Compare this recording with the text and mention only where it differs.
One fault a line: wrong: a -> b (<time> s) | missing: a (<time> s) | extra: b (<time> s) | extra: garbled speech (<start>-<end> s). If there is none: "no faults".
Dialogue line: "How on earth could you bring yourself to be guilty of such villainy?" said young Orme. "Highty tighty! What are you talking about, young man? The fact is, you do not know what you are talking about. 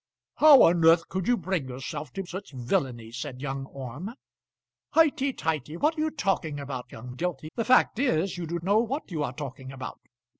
missing: be guilty of (2.2 s)
wrong: man -> guilty (7.1 s)
missing: not (8.6 s)